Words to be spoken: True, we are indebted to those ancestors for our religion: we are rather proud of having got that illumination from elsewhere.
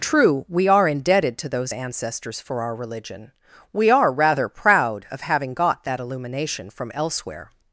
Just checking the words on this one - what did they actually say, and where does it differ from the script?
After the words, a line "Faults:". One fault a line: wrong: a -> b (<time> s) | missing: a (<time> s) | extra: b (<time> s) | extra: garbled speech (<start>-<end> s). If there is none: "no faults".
True, we are indebted to those ancestors for our religion: we are rather proud of having got that illumination from elsewhere.
Faults:
no faults